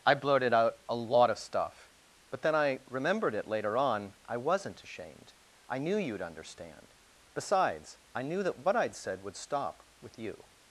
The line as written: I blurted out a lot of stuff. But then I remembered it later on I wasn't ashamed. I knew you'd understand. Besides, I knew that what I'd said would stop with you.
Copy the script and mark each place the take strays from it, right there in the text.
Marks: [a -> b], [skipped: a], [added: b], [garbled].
I blurted out a lot of stuff. But then I remembered it later on I wasn't ashamed. I knew you'd understand. Besides, I knew that what I'd said would stop with you.